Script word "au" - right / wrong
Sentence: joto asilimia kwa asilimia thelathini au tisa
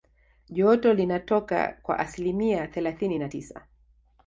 wrong